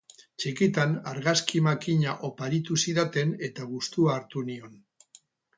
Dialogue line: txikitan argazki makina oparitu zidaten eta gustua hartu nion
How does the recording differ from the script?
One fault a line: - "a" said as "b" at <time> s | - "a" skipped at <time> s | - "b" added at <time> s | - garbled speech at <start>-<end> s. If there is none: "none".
none